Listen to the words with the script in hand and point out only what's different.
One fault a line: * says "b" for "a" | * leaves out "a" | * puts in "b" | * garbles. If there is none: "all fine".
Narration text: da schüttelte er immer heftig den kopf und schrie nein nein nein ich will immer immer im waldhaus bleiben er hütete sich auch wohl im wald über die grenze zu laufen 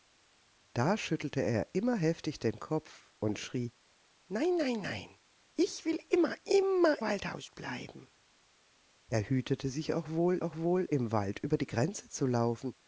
* leaves out "im"
* puts in "auch wohl"